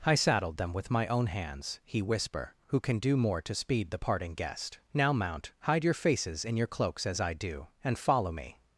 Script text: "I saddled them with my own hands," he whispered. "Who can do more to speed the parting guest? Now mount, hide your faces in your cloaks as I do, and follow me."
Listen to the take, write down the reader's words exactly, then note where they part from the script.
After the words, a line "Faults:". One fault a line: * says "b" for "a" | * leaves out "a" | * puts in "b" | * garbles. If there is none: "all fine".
"I saddled them with my own hands," he whisper. "Who can do more to speed the parting guest? Now mount, hide your faces in your cloaks as I do, and follow me."
Faults:
* says "whisper" for "whispered"